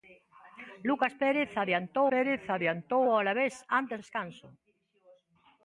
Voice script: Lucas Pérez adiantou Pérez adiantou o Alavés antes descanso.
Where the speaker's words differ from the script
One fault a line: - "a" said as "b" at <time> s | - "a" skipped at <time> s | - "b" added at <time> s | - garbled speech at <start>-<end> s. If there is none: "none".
none